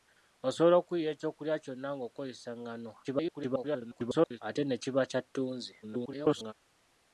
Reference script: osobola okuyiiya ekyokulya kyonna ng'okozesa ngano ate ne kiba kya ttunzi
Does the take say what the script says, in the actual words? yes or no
no